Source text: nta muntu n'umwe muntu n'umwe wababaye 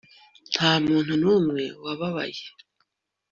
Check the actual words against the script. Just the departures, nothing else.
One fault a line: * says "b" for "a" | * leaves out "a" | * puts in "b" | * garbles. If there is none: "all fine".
* leaves out "muntu n'umwe"